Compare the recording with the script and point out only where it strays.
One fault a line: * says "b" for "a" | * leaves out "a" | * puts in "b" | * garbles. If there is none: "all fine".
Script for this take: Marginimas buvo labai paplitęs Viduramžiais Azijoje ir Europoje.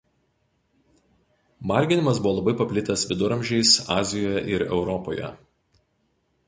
all fine